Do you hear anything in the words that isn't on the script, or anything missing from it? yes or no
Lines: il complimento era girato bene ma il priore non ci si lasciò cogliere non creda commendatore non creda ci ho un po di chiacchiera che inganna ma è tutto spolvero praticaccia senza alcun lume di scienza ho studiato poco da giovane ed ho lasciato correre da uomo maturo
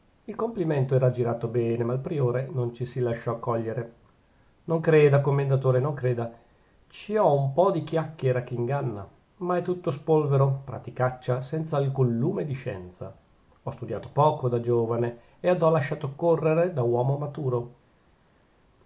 no